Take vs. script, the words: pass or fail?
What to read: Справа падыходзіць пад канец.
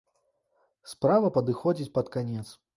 pass